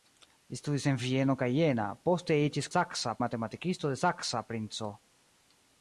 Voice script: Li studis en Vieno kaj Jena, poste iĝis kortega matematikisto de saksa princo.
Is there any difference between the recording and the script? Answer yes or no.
yes